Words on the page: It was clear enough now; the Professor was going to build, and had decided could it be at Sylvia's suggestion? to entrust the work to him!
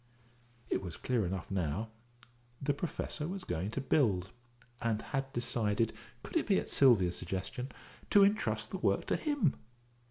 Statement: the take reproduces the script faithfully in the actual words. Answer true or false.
true